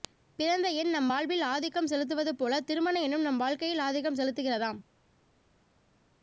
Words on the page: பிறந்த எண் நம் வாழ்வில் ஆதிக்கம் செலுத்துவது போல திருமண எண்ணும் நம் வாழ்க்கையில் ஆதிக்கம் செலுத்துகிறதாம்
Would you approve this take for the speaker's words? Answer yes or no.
yes